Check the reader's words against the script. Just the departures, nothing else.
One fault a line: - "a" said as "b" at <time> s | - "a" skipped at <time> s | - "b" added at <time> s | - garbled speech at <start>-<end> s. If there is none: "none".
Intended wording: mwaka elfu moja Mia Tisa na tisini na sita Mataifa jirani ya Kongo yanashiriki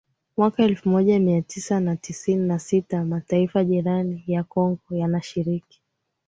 none